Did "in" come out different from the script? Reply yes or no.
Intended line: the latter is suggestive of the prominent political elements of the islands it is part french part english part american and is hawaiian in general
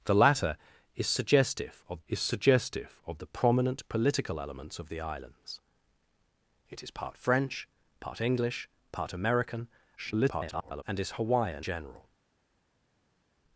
yes